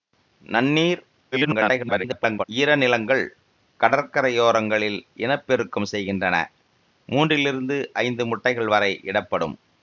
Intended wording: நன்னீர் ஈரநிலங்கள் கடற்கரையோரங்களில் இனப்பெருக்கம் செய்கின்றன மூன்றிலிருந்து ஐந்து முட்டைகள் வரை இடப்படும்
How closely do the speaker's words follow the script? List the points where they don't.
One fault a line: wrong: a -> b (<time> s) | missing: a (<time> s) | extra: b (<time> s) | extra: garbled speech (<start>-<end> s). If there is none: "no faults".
extra: garbled speech (1.3-2.4 s)